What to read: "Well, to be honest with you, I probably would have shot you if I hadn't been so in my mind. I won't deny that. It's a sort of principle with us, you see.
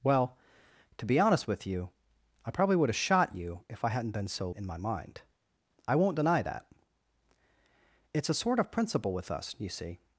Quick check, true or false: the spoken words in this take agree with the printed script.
true